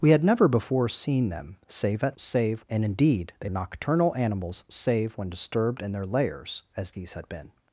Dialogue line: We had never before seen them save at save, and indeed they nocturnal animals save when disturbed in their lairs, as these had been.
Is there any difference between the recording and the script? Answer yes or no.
no